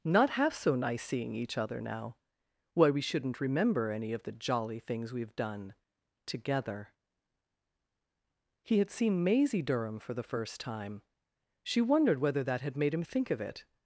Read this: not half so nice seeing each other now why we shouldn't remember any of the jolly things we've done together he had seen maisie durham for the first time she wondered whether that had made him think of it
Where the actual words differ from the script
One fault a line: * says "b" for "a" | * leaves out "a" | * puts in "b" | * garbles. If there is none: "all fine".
all fine